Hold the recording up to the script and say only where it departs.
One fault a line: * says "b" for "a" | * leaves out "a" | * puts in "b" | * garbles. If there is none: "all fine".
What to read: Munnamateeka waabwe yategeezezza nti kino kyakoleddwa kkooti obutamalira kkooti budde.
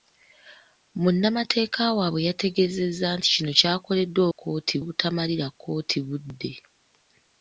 all fine